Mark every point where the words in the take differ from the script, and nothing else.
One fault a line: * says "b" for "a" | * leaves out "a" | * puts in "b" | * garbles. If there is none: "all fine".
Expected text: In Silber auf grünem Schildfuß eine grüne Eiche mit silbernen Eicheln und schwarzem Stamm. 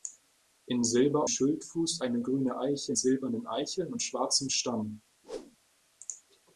* leaves out "auf grünem"
* leaves out "mit"